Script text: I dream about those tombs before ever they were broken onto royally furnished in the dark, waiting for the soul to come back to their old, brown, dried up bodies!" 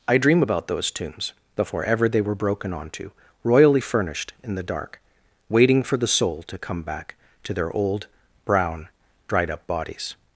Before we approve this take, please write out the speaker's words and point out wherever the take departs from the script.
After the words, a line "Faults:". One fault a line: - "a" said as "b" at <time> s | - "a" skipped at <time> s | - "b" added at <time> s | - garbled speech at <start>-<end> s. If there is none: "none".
I dream about those tombs before ever they were broken onto royally furnished in the dark, waiting for the soul to come back to their old, brown, dried up bodies!"
Faults:
none